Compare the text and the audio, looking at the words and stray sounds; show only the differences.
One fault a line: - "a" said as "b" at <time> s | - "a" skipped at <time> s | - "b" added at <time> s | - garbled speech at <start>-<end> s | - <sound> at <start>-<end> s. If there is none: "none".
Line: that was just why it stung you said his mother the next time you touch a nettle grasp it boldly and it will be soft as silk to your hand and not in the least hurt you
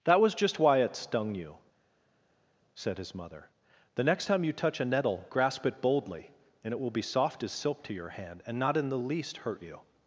none